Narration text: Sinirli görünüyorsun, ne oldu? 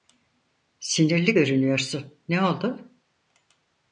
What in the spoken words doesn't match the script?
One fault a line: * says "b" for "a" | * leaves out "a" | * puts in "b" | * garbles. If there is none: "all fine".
all fine